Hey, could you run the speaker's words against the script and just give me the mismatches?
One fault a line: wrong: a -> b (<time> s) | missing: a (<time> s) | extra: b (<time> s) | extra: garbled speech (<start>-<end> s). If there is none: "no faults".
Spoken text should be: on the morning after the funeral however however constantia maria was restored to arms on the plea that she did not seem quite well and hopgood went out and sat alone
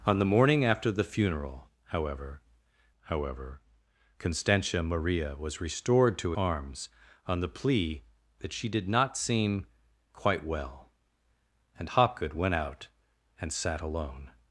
no faults